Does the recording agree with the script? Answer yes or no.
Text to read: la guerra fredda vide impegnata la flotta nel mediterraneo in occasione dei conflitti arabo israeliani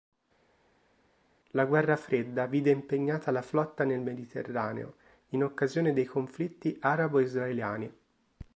yes